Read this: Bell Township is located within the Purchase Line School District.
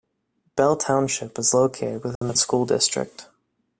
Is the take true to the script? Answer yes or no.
no